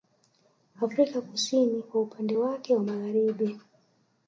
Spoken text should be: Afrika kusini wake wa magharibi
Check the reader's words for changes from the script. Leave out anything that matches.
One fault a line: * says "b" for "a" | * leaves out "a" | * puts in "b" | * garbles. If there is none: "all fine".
* puts in "kwa upande"